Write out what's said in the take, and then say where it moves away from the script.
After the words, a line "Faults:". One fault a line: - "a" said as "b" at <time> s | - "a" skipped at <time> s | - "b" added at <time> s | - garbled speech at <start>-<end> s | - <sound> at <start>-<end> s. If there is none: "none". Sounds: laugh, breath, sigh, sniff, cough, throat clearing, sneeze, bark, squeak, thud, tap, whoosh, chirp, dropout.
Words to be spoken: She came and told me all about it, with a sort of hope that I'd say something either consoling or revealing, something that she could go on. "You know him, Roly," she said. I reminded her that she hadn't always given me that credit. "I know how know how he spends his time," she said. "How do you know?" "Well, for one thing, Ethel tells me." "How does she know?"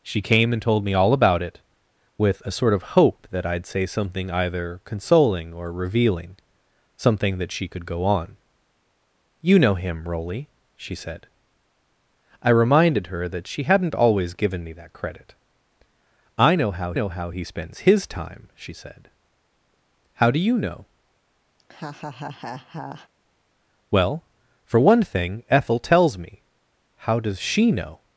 She came and told me all about it, with a sort of hope that I'd say something either consoling or revealing, something that she could go on. "You know him, Roly," she said. I reminded her that she hadn't always given me that credit. "I know how know how he spends his time," she said. "How do you know?" "Well, for one thing, Ethel tells me." "How does she know?"
Faults:
- laugh at 21.6-23.1 s